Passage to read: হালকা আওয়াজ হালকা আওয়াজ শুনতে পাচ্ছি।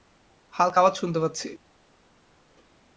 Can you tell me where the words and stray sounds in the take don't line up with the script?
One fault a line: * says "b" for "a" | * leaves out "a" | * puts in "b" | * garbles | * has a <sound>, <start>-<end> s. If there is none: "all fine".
* leaves out "হালকা আওয়াজ"